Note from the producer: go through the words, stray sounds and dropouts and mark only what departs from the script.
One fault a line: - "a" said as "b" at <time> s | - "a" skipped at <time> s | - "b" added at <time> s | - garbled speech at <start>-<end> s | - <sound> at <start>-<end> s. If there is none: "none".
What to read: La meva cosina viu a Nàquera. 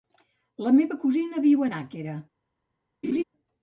- laugh at 3.0-3.2 s